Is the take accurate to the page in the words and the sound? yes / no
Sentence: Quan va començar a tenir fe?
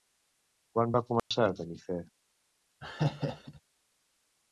no